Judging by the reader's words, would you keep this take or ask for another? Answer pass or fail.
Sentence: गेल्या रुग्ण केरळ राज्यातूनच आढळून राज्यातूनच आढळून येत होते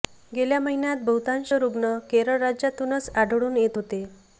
fail